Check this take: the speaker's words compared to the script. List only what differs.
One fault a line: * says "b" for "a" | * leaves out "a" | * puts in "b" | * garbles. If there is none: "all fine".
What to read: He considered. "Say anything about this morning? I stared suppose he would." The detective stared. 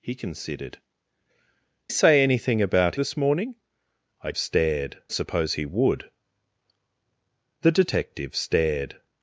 all fine